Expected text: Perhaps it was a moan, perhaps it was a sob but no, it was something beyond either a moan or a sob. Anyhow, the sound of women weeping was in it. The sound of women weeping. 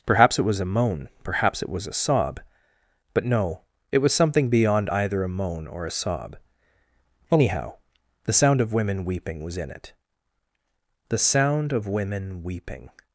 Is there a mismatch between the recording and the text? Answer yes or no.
no